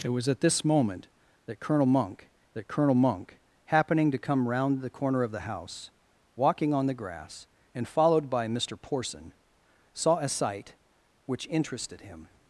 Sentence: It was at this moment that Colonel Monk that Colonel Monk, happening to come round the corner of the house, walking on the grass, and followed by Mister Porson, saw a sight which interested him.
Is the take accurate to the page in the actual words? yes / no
yes